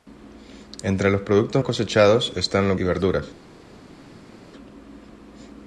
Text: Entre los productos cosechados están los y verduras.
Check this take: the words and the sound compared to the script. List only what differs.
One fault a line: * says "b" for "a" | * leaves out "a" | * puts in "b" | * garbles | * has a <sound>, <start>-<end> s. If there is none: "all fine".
all fine